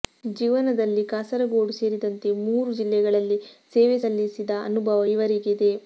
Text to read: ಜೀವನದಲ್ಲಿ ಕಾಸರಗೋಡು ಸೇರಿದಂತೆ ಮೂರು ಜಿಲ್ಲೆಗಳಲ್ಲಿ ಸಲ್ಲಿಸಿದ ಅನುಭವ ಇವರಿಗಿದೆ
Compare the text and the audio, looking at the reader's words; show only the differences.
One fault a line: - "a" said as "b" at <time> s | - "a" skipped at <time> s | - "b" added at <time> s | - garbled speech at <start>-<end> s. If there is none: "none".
- "ಸೇವೆ" added at 3.8 s